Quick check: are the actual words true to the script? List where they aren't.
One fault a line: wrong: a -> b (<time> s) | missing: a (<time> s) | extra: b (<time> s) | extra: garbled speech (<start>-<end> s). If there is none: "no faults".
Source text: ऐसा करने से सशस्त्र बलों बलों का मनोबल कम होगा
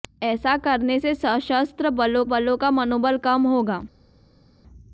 no faults